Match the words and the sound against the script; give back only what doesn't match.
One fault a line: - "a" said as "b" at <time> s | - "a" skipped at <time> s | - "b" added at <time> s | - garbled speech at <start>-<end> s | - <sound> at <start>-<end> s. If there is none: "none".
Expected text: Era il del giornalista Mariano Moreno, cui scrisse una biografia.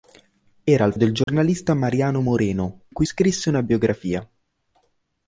- dropout at 1.2-1.3 s